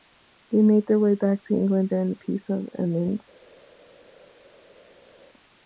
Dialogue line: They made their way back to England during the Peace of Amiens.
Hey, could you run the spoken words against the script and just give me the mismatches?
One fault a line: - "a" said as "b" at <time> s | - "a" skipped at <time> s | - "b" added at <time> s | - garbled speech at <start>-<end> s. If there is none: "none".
none